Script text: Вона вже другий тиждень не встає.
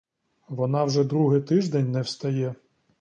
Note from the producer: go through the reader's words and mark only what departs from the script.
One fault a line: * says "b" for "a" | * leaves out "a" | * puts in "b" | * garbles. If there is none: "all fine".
all fine